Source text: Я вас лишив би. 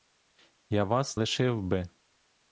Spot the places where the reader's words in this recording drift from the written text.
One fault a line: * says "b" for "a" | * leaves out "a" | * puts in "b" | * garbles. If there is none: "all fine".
all fine